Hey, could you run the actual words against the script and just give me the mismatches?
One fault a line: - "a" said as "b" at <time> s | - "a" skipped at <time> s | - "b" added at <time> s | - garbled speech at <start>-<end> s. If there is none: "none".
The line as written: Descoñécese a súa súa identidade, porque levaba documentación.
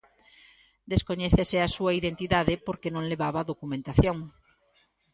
- "súa" skipped at 1.9 s
- "non" added at 3.0 s